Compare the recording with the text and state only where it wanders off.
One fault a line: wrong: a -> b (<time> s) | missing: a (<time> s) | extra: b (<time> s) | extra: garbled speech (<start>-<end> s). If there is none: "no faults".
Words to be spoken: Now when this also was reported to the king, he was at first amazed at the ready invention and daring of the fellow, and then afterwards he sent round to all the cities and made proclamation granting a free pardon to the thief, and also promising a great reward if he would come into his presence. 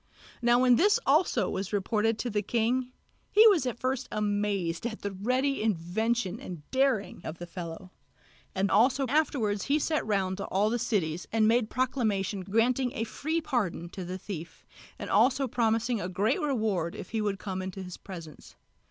wrong: then -> also (8.7 s)